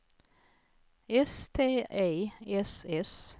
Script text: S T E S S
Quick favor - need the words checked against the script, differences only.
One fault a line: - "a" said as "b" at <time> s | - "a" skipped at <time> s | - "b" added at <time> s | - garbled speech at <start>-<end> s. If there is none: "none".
none